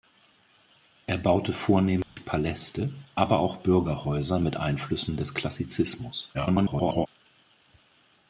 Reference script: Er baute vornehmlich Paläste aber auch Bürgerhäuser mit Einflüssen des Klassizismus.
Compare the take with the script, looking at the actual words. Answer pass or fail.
fail